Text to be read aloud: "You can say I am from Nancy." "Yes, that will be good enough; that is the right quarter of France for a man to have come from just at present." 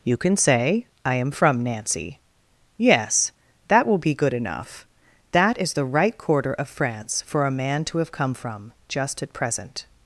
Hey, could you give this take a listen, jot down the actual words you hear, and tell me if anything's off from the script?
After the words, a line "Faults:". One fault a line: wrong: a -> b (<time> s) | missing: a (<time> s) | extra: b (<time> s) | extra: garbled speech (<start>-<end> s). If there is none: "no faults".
"You can say I am from Nancy." "Yes, that will be good enough; that is the right quarter of France for a man to have come from just at present."
Faults:
no faults